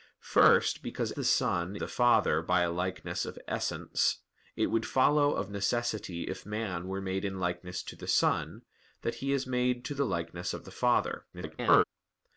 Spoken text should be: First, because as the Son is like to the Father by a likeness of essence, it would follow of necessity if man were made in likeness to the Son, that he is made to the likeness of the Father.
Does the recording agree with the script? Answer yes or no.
no